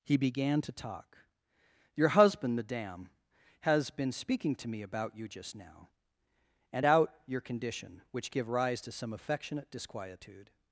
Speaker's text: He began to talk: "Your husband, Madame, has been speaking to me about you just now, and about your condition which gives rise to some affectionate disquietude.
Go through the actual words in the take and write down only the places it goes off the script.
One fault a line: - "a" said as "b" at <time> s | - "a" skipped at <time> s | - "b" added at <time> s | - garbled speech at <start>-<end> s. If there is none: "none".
- "about" said as "out" at 6.8 s
- "gives" said as "give" at 8.3 s